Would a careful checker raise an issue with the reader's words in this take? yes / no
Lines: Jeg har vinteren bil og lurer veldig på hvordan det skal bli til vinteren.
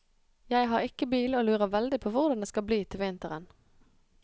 yes